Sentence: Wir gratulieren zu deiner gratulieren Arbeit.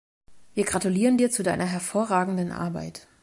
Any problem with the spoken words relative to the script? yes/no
yes